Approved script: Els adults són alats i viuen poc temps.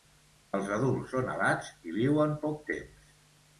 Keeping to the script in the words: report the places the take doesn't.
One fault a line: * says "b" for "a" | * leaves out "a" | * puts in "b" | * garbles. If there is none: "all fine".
all fine